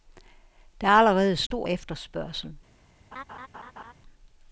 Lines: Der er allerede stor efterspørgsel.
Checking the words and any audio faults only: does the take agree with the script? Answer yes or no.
no